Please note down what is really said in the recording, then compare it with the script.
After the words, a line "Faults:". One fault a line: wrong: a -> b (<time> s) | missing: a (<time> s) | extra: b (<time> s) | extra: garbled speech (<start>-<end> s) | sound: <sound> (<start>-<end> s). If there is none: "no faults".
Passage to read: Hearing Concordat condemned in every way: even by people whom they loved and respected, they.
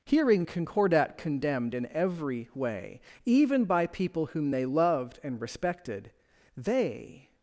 Hearing Concordat condemned in every way: even by people whom they loved and respected, they.
Faults:
no faults